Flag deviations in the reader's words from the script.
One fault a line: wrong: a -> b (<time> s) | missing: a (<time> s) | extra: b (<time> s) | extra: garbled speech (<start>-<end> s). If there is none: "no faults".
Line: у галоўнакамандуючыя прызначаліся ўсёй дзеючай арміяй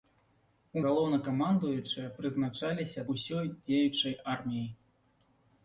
no faults